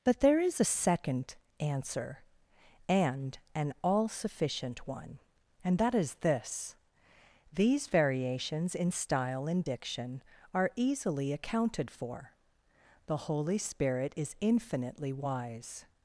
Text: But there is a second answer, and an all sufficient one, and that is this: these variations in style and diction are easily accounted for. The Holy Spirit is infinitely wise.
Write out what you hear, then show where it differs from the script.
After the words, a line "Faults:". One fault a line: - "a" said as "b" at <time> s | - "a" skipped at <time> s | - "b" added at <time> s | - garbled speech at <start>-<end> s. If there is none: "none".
But there is a second answer, and an all sufficient one, and that is this: these variations in style and diction are easily accounted for. The Holy Spirit is infinitely wise.
Faults:
none